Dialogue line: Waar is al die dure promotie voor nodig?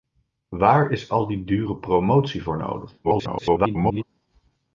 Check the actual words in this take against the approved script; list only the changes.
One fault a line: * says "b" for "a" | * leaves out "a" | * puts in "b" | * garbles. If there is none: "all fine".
* garbles